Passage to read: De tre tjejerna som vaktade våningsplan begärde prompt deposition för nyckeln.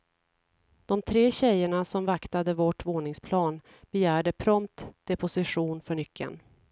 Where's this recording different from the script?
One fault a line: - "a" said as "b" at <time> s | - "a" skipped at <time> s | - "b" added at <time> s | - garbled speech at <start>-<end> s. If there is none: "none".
- "vårt" added at 2.5 s